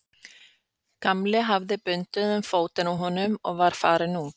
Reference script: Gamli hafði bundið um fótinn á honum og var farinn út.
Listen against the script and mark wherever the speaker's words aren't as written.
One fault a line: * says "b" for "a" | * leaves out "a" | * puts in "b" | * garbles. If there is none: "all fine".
all fine